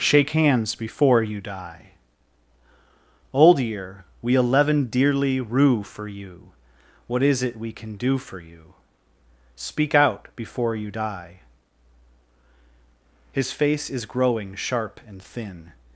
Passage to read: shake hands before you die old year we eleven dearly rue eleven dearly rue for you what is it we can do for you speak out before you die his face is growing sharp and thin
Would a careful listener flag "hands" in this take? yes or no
no